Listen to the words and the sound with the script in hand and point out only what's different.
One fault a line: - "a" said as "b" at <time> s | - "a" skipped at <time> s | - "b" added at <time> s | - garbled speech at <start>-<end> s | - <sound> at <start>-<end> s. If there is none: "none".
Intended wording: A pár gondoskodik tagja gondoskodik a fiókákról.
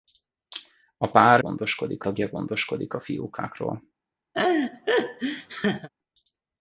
- laugh at 4.3-5.9 s